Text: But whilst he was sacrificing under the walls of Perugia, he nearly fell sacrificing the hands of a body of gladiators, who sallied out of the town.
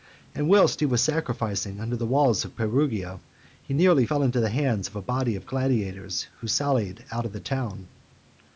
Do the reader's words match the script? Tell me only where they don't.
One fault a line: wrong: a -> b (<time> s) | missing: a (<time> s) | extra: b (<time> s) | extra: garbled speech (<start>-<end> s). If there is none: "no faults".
wrong: But -> And (0.3 s)
wrong: sacrificing -> into (4.2 s)